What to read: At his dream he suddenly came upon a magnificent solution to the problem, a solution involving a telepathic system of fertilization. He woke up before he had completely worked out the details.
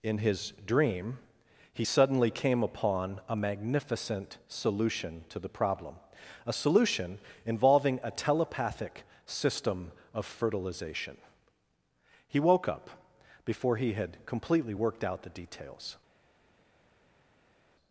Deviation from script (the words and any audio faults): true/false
true